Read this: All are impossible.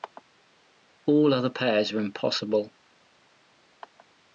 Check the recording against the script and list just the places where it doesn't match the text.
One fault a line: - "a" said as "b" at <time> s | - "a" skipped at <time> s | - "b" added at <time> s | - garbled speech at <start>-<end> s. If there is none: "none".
- "other pairs" added at 1.3 s